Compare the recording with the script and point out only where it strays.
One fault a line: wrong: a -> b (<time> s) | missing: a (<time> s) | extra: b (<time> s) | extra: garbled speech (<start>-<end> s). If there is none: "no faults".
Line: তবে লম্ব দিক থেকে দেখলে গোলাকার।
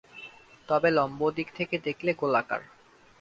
no faults